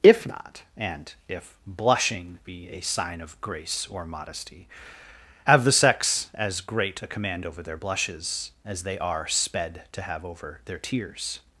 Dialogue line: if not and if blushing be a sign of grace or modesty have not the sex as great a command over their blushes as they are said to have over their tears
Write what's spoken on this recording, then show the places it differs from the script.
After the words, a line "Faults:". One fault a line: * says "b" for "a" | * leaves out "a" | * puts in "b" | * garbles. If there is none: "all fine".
if not and if blushing be a sign of grace or modesty have the sex as great a command over their blushes as they are sped to have over their tears
Faults:
* leaves out "not"
* says "sped" for "said"